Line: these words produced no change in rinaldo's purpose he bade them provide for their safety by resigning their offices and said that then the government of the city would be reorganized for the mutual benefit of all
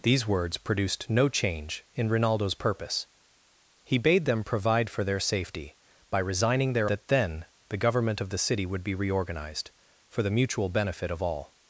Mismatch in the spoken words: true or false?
true